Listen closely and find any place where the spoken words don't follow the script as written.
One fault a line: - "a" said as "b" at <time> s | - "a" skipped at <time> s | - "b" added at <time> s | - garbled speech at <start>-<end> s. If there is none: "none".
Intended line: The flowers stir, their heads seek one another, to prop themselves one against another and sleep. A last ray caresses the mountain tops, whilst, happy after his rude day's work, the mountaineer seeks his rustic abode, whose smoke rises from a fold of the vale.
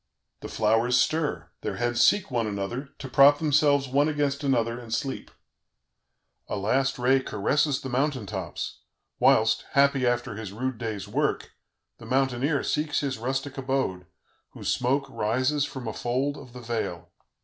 none